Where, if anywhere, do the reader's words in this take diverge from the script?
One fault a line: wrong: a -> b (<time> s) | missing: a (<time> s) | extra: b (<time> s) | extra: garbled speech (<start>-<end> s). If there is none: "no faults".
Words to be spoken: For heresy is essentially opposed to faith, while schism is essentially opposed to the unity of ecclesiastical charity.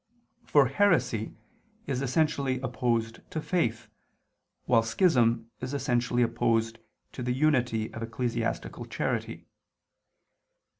no faults